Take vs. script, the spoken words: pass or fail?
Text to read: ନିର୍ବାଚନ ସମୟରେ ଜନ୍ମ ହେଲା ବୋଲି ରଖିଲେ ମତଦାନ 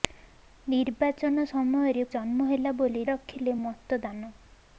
pass